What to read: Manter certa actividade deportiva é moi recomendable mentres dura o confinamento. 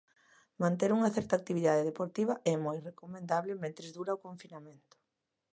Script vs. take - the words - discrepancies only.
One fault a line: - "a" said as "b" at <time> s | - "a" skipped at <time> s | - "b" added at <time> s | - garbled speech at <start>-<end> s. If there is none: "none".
- "unha" added at 1.0 s